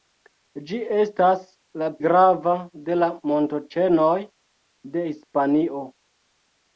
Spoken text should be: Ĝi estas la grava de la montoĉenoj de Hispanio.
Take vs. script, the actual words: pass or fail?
pass